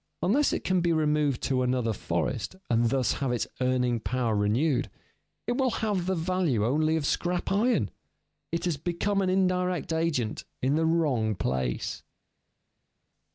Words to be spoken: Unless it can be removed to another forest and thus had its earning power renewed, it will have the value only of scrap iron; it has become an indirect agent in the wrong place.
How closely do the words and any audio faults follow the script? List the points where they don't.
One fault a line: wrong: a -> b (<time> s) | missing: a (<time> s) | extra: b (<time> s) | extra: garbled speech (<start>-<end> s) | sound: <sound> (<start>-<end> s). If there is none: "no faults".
wrong: had -> have (3.2 s)